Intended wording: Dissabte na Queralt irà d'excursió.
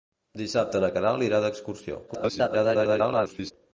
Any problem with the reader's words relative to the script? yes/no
yes